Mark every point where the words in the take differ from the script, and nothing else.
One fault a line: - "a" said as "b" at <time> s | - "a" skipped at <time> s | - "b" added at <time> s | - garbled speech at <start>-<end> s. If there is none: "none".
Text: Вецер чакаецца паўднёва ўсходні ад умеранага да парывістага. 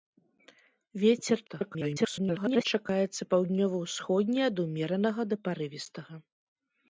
- garbled speech at 1.5-2.6 s